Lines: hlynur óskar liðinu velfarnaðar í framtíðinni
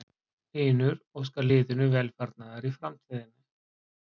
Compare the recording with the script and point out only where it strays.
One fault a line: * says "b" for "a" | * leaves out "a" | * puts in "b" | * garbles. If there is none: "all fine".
all fine